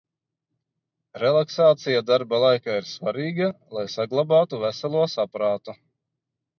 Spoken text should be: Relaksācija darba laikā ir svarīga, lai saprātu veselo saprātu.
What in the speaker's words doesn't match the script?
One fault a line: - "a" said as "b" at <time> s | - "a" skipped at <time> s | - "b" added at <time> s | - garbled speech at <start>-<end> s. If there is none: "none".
- "saprātu" said as "saglabātu" at 4.0 s